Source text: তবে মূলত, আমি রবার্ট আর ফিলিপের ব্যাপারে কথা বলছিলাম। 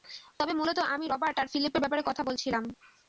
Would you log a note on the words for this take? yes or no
no